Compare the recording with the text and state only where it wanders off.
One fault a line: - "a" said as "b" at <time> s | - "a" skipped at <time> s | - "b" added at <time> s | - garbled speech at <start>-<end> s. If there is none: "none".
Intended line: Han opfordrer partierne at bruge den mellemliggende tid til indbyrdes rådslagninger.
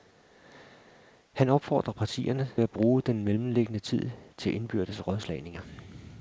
none